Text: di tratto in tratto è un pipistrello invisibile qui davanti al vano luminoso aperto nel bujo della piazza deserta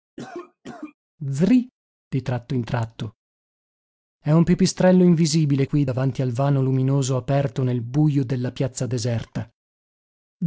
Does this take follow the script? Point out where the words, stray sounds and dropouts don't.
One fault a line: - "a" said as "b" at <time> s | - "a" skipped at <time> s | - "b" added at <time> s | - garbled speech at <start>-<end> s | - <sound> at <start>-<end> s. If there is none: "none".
- cough at 0.2-0.9 s